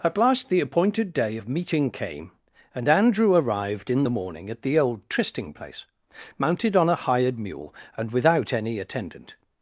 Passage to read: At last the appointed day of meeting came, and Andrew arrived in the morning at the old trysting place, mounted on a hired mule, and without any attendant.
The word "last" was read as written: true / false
true